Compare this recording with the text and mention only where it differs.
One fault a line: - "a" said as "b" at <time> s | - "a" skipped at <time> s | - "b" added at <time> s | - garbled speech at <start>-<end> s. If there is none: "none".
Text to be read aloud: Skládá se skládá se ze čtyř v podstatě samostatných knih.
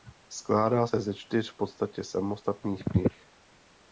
- "skládá se" skipped at 1.0 s